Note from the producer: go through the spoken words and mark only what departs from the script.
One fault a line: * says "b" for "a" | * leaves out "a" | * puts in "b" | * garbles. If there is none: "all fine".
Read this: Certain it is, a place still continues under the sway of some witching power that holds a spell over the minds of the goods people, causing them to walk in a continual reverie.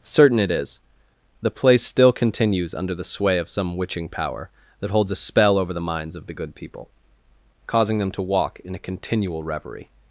* says "the" for "a"
* says "good" for "goods"